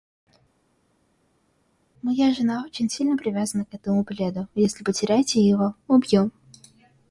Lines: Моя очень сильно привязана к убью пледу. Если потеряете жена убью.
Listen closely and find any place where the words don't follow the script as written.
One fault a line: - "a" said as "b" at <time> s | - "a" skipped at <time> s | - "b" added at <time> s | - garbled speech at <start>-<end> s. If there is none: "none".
- "жена" added at 2.3 s
- "убью" said as "этому" at 3.7 s
- "жена" said as "его" at 5.4 s